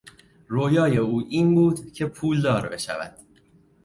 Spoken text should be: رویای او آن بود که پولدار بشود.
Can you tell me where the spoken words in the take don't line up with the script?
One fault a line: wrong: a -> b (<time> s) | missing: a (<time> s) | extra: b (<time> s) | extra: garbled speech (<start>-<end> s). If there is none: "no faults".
wrong: آن -> این (1.3 s)